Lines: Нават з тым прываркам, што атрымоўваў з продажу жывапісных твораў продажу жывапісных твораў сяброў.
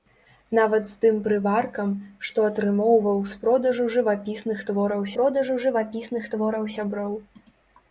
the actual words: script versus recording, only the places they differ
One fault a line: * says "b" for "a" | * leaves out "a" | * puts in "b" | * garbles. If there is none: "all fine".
all fine